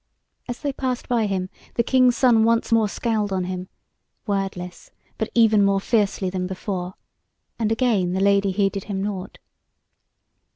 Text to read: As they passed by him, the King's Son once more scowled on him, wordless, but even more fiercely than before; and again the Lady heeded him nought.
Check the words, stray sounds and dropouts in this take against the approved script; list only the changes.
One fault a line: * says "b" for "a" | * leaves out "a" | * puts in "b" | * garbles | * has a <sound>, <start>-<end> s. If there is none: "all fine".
all fine